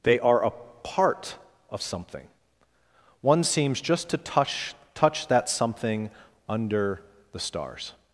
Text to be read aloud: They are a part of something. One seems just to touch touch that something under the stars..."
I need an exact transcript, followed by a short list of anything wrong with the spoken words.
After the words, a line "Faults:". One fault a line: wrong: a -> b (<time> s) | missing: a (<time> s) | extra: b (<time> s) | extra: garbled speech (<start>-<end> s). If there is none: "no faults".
They are a part of something. One seems just to touch touch that something under the stars..."
Faults:
no faults